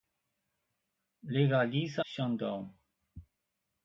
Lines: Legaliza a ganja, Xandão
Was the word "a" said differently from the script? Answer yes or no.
yes